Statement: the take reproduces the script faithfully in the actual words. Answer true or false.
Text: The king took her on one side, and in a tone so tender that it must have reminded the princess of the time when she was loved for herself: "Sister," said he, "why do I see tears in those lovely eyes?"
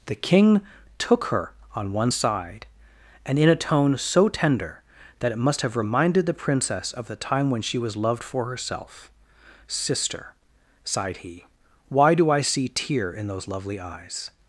false